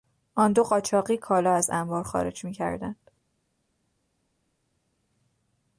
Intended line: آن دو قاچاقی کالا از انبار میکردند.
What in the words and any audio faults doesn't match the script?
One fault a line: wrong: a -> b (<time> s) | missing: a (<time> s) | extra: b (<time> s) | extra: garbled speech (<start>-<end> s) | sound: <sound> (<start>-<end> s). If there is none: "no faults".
extra: خارج (2.0 s)